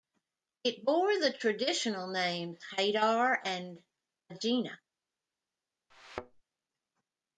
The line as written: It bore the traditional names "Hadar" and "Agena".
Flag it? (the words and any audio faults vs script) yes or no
yes